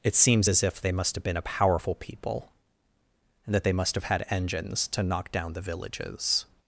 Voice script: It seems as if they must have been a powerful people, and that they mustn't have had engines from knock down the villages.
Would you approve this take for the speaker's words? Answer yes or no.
no